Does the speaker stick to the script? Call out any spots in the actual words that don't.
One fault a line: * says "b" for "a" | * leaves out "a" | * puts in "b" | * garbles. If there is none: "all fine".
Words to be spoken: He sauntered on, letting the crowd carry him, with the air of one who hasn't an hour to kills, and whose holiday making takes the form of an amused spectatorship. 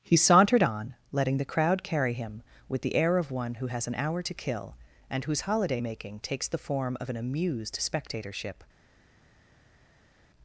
* says "has" for "hasn't"
* says "kill" for "kills"